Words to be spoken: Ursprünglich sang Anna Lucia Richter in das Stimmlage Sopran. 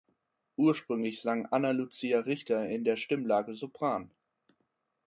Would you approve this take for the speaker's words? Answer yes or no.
no